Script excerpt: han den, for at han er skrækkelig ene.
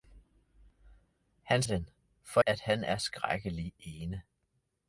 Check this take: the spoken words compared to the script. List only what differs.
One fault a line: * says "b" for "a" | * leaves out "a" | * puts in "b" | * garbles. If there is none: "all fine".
all fine